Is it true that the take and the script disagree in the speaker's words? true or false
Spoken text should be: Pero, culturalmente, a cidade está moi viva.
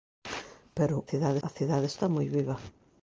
true